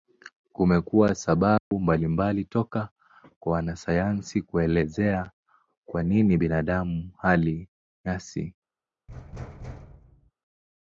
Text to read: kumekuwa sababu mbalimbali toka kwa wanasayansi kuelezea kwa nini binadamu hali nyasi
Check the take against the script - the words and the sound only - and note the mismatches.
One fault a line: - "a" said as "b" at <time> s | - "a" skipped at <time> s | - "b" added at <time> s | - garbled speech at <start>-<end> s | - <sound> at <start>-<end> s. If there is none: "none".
- dropout at 1.6-1.7 s
- thud at 9.1-10.3 s